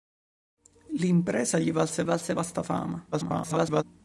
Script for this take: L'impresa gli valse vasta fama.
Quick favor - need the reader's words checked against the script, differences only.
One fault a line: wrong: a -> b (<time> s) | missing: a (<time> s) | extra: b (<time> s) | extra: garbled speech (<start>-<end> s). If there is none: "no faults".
extra: valse (2.0 s)
extra: garbled speech (3.1-3.8 s)